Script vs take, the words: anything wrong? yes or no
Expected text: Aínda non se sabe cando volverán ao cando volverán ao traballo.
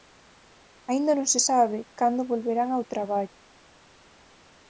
yes